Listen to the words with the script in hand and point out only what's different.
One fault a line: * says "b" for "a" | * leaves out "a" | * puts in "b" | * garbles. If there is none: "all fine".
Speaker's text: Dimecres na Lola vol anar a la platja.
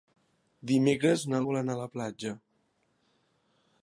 * leaves out "Lola"